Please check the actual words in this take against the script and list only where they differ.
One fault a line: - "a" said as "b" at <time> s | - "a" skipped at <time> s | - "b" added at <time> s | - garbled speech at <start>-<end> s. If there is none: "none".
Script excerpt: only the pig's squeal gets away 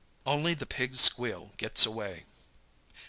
none